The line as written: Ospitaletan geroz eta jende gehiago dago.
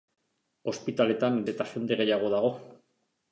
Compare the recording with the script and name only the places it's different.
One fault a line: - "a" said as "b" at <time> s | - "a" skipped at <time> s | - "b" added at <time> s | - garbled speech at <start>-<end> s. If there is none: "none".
- "geroz" skipped at 1.4 s